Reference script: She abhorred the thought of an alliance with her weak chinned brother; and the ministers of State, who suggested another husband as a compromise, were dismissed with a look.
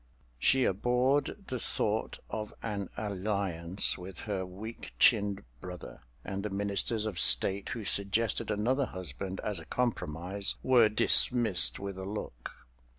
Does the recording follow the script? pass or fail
pass